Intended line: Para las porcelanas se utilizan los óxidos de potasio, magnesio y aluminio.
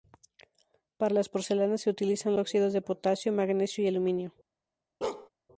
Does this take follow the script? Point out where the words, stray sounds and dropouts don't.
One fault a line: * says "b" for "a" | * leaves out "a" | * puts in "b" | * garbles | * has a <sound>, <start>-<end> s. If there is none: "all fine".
* leaves out "los"
* has a bark, 5.0-5.3 s